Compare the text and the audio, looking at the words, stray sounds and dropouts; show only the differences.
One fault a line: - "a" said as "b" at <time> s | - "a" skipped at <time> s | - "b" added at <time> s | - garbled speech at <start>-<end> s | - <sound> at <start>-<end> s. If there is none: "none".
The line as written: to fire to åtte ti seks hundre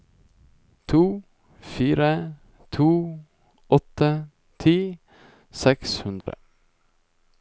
- dropout at 6.2-6.3 s